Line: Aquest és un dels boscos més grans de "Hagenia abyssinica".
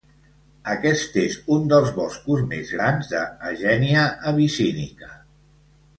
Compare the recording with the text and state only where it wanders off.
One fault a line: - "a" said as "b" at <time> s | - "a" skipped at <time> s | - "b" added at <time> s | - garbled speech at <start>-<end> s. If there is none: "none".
none